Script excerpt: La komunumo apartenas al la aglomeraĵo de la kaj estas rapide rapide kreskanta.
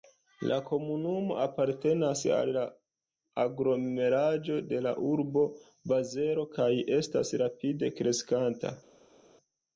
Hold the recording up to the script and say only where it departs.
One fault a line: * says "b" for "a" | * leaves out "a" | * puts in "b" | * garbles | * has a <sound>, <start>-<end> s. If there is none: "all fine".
* puts in "urbo Bazelo"
* leaves out "rapide"